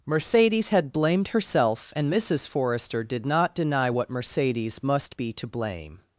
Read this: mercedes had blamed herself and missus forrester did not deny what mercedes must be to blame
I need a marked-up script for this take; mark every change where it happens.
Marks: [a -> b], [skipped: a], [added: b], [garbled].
mercedes had blamed herself and missus forrester did not deny what mercedes must be to blame